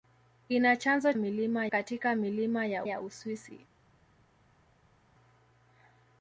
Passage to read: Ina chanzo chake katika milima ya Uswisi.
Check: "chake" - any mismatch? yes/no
yes